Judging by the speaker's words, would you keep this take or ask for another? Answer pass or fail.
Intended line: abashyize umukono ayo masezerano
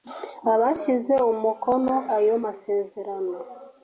pass